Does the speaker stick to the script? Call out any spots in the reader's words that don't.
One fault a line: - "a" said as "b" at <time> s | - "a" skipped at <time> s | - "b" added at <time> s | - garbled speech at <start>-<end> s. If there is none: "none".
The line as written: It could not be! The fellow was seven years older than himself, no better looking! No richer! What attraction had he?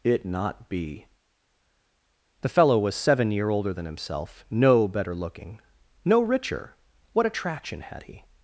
- "could" skipped at 0.2 s
- "years" said as "year" at 3.3 s